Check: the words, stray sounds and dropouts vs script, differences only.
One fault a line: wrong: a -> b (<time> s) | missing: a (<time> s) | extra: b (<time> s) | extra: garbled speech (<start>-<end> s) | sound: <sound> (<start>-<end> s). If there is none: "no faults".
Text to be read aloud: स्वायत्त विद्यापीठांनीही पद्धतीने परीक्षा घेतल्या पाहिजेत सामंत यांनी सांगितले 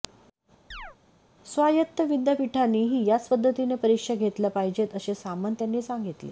sound: chirp (0.7-1.0 s)
extra: याच (3.1 s)
extra: असे (4.9 s)